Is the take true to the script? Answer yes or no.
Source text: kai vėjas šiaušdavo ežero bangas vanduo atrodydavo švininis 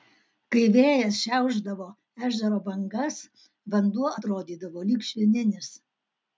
no